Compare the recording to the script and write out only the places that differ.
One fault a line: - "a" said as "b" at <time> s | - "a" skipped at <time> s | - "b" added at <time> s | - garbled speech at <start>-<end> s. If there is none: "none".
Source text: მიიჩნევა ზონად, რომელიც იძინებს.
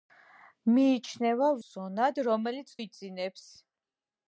none